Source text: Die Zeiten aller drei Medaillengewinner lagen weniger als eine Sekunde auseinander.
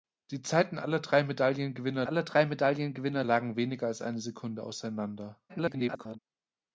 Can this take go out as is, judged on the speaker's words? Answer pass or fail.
fail